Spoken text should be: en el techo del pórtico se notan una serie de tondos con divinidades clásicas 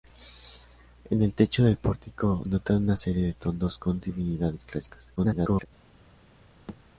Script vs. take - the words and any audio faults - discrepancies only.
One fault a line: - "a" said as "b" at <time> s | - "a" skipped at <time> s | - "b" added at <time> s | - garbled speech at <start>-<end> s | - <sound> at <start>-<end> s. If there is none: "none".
- "se" skipped at 2.4 s
- garbled speech at 5.2-5.7 s
- thud at 6.7-6.8 s